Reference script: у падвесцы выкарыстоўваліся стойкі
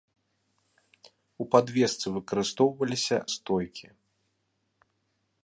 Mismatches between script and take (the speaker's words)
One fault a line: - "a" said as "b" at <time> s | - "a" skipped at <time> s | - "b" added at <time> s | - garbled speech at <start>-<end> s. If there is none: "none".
none